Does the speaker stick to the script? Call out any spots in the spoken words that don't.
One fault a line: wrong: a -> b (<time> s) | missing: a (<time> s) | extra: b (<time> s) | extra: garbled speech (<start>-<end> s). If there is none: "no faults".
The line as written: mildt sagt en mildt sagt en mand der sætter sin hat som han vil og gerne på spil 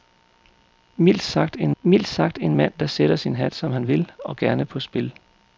no faults